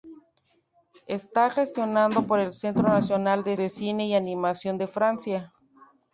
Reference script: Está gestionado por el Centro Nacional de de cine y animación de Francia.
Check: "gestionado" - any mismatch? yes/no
no